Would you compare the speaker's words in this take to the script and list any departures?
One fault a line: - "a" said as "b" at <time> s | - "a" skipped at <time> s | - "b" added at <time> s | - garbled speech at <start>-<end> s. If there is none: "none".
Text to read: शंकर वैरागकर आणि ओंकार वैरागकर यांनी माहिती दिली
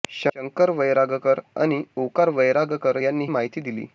none